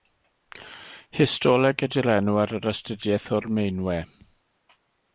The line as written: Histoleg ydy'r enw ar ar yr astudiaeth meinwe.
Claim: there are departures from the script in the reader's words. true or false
true